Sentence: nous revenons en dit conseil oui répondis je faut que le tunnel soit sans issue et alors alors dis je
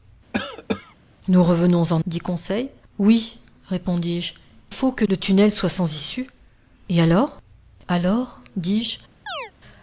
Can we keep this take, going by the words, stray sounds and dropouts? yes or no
no